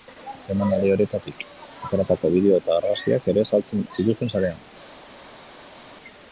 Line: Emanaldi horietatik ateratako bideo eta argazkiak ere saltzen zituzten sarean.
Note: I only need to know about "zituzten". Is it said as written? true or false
true